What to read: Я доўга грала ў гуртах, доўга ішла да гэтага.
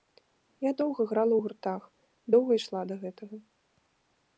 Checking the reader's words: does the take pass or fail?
pass